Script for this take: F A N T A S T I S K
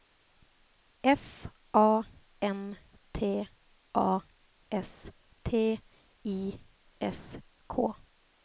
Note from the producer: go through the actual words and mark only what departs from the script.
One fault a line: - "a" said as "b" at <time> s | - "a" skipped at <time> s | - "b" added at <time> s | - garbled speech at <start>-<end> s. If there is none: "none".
none